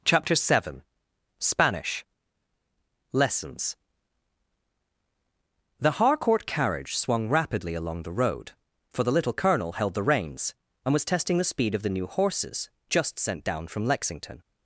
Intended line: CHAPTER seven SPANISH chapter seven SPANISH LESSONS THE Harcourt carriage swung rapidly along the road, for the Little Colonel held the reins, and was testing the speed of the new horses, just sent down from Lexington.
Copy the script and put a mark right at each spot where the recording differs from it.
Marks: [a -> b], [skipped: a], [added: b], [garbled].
CHAPTER seven SPANISH [skipped: chapter seven SPANISH] LESSONS THE Harcourt carriage swung rapidly along the road, for the Little Colonel held the reins, and was testing the speed of the new horses, just sent down from Lexington.